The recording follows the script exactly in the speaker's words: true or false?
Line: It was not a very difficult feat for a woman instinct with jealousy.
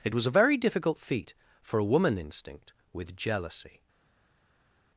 false